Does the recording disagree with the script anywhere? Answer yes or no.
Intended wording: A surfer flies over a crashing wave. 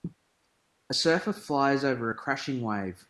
no